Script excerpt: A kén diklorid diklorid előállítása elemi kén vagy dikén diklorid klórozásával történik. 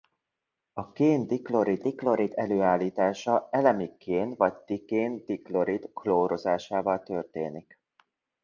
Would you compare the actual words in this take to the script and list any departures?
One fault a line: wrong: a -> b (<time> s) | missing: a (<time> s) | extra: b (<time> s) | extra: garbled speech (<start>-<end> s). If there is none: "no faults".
no faults